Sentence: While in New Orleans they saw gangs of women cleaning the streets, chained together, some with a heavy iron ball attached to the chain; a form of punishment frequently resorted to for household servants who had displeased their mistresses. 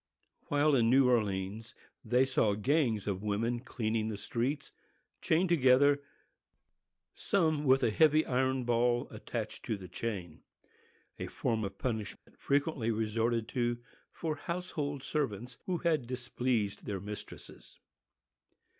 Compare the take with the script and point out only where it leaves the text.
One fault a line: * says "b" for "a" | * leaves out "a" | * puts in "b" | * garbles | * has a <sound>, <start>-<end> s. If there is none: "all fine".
* has a dropout, 12.2-12.3 s